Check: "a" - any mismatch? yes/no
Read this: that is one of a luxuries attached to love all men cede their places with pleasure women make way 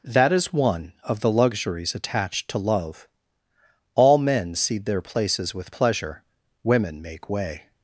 yes